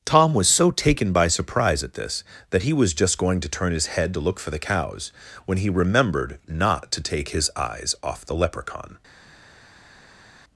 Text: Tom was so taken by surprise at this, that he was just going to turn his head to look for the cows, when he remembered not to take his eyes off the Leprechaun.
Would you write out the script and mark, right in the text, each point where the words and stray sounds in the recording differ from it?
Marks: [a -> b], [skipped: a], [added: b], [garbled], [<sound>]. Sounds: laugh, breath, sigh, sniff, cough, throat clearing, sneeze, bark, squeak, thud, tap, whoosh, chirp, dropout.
Tom was so taken by surprise at this, that he was just going to turn his head to look for the cows, when he remembered not to take his eyes off the Leprechaun.